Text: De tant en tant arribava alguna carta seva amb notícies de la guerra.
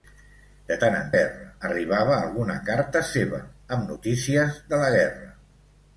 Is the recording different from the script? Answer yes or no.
yes